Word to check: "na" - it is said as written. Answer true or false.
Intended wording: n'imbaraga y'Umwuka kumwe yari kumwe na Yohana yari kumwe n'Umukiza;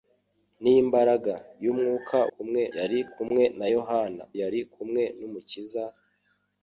true